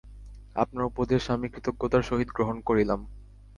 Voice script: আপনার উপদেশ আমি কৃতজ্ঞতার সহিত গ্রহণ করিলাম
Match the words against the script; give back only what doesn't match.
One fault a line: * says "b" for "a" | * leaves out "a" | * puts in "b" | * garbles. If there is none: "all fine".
all fine